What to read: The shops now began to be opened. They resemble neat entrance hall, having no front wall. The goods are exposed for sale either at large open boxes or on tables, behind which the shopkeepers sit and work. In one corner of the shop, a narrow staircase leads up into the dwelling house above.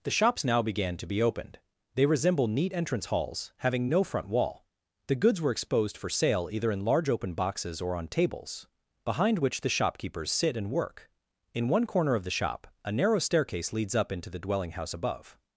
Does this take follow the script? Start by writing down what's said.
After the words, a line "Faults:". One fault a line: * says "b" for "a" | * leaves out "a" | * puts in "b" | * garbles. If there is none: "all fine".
The shops now began to be opened. They resemble neat entrance halls, having no front wall. The goods were exposed for sale either in large open boxes or on tables, behind which the shopkeepers sit and work. In one corner of the shop, a narrow staircase leads up into the dwelling house above.
Faults:
* says "halls" for "hall"
* says "were" for "are"
* says "in" for "at"